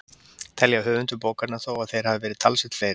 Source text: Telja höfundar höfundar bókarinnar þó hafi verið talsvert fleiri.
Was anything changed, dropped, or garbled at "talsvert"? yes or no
no